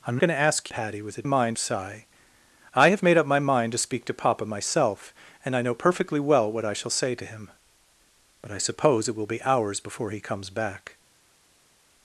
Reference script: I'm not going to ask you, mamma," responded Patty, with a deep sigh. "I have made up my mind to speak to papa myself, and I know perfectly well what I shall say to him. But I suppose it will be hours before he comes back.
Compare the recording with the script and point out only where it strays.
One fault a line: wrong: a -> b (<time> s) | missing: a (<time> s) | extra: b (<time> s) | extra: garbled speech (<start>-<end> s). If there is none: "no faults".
missing: not (0.2 s)
missing: you mamma responded (0.7 s)
wrong: deep -> mind (1.2 s)